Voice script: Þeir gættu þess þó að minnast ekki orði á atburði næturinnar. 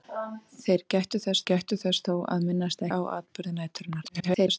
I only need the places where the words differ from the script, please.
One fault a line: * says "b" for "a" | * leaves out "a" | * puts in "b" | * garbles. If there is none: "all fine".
* puts in "gættu þess"
* leaves out "ekki orði"
* garbles